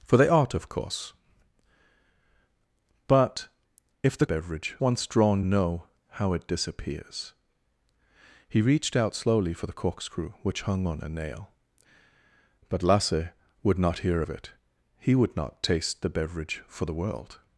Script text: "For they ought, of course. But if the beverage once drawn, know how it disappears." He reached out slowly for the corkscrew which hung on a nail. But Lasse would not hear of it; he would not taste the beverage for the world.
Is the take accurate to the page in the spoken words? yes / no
yes